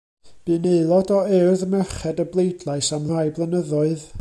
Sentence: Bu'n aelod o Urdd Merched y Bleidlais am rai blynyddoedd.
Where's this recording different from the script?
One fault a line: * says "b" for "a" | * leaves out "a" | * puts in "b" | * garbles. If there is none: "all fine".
all fine